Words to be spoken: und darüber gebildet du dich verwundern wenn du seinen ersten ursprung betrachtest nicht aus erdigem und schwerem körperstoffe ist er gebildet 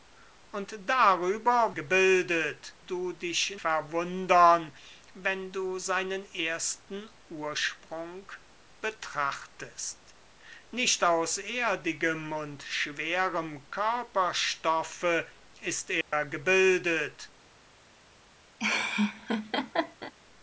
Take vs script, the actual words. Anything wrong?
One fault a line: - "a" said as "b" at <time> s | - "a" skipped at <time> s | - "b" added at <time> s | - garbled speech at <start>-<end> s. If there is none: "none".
none